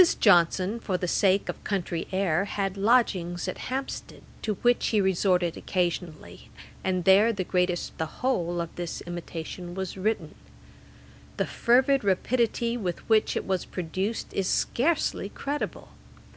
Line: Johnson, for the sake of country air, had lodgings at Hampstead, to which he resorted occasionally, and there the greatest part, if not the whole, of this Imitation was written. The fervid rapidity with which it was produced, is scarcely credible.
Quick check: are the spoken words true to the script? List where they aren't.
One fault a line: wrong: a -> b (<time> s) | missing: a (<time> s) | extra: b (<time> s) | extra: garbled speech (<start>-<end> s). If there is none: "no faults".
missing: part if not (8.0 s)